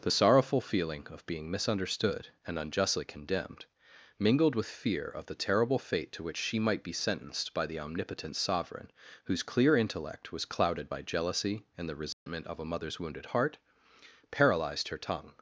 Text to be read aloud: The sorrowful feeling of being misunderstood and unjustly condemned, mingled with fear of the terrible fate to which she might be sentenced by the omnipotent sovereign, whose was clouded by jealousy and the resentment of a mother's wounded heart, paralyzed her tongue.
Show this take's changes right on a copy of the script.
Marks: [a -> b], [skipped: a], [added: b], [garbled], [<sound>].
The sorrowful feeling of being misunderstood and unjustly condemned, mingled with fear of the terrible fate to which she might be sentenced by the omnipotent sovereign, whose [added: clear intellect] was clouded by jealousy and the resentment [dropout] of a mother's wounded heart, paralyzed her tongue.